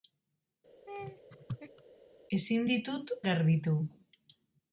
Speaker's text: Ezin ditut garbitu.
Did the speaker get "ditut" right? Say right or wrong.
right